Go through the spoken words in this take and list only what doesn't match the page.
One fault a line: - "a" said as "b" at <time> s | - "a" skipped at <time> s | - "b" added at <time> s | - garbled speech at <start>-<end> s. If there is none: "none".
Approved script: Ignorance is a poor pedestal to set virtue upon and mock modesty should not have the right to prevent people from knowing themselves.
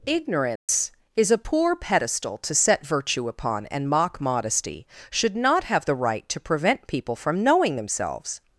none